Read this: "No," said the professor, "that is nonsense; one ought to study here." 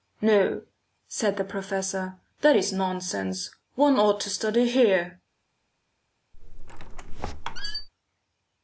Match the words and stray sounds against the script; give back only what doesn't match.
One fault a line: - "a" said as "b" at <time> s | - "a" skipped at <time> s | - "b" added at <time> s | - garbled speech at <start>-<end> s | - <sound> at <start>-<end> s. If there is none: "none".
- squeak at 6.3-7.9 s